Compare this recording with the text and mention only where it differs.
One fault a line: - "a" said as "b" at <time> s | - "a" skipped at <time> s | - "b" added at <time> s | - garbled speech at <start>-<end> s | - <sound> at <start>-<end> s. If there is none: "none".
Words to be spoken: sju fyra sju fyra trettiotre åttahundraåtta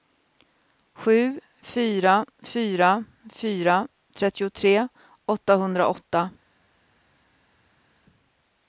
- "sju" said as "fyra" at 2.4 s